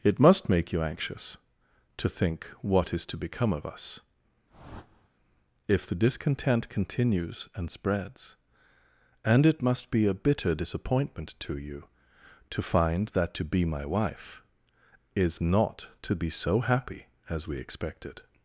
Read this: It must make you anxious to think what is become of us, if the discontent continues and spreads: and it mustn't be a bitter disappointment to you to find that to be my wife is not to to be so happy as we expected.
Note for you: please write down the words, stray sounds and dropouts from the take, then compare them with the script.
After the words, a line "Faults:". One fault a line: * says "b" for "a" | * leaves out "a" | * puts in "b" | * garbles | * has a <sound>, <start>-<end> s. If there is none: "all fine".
It must make you anxious to think what is to become of us, if the discontent continues and spreads: and it must be a bitter disappointment to you to find that to be my wife is not to be so happy as we expected.
Faults:
* puts in "to"
* has a whoosh, 4.5-5.1 s
* says "must" for "mustn't"
* leaves out "to"